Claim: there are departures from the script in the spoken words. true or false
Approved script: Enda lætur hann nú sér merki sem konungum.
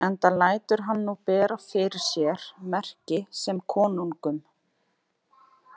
true